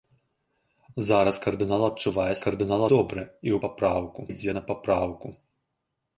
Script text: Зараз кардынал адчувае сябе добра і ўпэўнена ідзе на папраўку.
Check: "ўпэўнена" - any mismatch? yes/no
yes